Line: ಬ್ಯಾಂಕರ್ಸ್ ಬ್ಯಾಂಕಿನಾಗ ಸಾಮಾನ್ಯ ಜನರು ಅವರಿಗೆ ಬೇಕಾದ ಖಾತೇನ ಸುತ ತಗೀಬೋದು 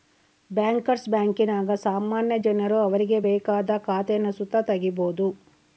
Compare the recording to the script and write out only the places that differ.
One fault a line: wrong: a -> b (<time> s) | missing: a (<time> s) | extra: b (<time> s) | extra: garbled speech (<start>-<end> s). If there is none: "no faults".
no faults